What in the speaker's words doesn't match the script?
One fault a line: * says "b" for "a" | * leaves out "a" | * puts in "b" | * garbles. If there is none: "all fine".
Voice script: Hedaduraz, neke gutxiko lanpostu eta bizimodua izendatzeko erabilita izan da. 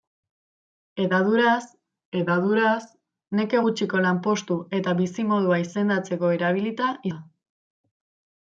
* puts in "hedaduraz"
* leaves out "izan"